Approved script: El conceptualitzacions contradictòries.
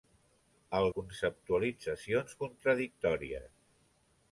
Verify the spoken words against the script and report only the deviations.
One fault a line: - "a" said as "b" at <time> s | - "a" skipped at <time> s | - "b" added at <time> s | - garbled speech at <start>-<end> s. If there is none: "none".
none